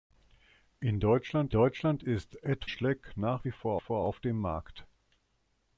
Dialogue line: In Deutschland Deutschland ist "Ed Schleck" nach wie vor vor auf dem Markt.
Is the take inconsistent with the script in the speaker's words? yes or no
no